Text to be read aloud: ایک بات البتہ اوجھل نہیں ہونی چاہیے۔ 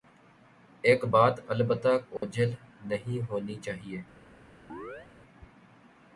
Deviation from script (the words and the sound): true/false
true